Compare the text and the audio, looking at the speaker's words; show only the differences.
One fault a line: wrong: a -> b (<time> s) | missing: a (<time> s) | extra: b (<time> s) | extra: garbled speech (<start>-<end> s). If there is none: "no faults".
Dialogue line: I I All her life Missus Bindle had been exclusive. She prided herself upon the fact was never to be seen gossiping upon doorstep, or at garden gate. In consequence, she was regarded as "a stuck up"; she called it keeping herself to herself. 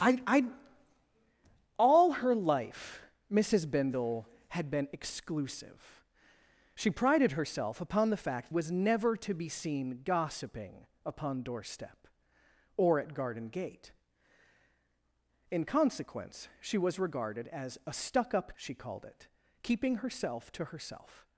no faults